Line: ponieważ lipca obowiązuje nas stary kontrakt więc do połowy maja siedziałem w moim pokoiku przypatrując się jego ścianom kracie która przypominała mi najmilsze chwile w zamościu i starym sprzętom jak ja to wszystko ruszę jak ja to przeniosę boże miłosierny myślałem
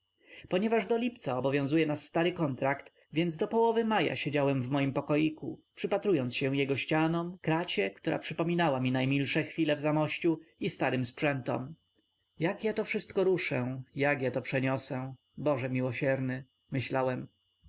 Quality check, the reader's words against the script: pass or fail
fail